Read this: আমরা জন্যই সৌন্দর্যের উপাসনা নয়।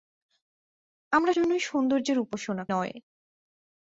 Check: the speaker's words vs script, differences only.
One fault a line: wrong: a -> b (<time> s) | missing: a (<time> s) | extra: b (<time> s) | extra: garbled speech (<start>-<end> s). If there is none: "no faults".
no faults